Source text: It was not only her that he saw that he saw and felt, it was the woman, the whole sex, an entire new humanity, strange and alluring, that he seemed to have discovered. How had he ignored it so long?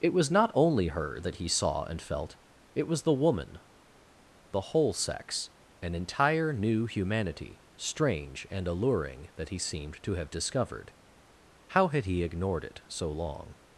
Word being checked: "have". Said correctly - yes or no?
yes